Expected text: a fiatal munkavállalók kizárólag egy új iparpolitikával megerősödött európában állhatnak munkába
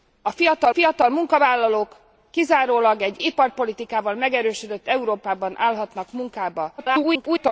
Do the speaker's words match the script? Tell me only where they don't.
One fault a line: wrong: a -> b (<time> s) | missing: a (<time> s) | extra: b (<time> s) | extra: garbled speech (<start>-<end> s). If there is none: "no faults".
extra: fiatal (0.7 s)
missing: új (3.2 s)
extra: garbled speech (6.8-7.5 s)